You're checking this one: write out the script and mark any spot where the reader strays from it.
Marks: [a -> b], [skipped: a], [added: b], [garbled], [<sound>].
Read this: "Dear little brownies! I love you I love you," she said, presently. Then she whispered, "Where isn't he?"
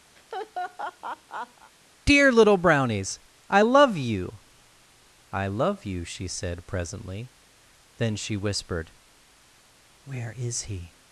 [laugh] "Dear little brownies! I love you I love you," she said, presently. Then she whispered, "Where [isn't -> is] he?"